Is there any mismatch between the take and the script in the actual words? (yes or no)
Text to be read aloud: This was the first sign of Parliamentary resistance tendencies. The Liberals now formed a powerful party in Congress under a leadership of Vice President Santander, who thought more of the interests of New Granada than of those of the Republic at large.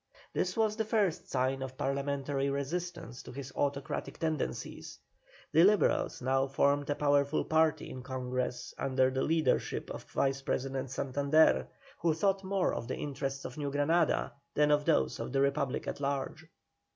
yes